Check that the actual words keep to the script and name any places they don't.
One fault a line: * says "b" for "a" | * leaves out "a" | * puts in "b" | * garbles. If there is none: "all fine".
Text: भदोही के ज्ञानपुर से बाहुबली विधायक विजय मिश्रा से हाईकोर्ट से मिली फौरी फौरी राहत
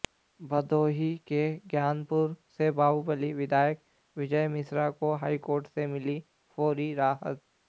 * says "को" for "से"
* leaves out "फौरी"